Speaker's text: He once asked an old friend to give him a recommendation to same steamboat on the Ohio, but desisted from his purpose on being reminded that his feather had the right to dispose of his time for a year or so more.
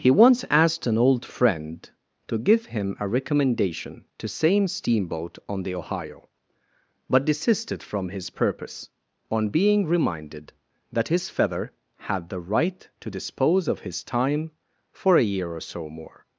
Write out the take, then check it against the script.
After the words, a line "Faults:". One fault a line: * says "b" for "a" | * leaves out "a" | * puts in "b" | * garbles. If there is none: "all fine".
He once asked an old friend to give him a recommendation to same steamboat on the Ohio, but desisted from his purpose on being reminded that his feather had the right to dispose of his time for a year or so more.
Faults:
all fine